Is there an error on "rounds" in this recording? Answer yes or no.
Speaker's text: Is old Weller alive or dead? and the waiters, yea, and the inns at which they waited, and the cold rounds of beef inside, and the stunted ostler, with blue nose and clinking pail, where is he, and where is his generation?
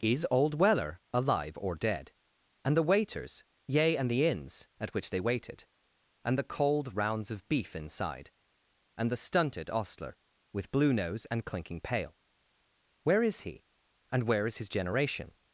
no